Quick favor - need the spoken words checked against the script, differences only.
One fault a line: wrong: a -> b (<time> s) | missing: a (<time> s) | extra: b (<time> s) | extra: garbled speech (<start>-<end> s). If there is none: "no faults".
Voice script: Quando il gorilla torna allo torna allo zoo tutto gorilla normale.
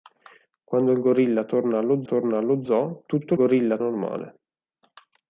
no faults